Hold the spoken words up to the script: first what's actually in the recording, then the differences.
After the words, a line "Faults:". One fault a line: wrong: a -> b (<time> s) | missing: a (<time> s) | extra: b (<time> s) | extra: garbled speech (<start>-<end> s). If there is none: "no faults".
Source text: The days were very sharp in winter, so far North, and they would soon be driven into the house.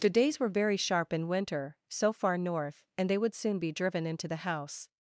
The days were very sharp in winter, so far North, and they would soon be driven into the house.
Faults:
no faults